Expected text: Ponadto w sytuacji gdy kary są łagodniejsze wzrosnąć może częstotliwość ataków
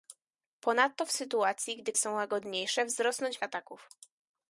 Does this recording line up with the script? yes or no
no